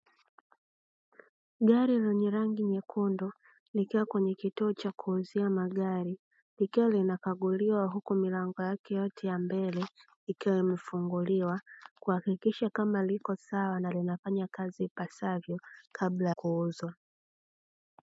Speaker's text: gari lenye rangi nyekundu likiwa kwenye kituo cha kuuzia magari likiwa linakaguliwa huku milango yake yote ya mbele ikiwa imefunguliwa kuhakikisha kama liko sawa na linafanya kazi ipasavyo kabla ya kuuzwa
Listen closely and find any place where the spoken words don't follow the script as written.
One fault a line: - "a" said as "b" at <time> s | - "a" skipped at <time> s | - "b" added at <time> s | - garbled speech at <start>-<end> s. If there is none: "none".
- "ya" skipped at 16.3 s